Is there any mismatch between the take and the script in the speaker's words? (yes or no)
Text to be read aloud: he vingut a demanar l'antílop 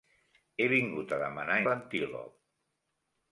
no